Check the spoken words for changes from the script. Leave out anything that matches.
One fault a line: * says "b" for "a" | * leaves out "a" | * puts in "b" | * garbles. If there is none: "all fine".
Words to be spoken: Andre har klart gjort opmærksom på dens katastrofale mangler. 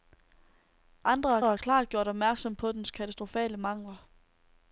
* puts in "har"